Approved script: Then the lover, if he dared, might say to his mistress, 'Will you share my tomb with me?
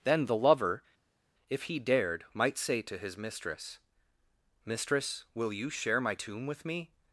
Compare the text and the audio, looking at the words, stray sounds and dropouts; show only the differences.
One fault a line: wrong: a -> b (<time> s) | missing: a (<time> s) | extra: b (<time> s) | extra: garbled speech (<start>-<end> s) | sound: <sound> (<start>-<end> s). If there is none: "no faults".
extra: mistress (4.6 s)